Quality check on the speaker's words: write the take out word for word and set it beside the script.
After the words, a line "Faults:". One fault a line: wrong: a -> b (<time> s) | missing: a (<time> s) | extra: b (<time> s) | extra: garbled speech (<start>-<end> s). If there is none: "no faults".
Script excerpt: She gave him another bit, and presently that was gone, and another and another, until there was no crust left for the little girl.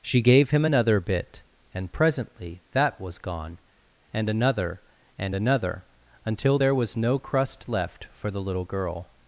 She gave him another bit, and presently that was gone, and another and another, until there was no crust left for the little girl.
Faults:
no faults